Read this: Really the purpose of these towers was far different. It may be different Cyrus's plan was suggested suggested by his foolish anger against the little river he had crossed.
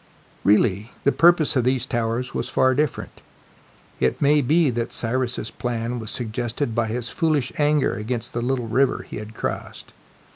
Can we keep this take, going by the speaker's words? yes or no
no